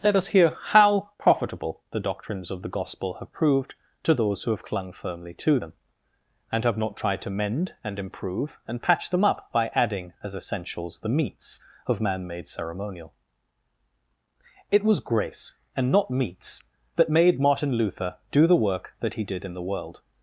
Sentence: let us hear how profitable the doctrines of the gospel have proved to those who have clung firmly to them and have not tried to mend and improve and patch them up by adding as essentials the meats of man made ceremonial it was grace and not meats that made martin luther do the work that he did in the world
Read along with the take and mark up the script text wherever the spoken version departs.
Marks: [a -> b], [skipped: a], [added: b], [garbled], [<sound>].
let us hear how profitable the doctrines of the gospel have proved to those who have clung firmly to them and have not tried to mend and improve and patch them up by adding as essentials the meats of man made ceremonial it was grace and not meats that made martin luther do the work that he did in the world